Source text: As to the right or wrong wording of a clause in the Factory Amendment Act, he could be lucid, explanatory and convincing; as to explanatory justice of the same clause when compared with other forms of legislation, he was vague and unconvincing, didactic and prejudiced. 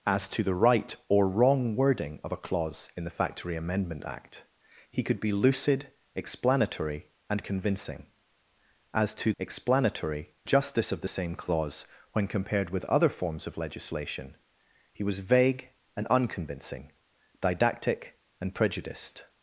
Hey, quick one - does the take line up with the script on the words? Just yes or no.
yes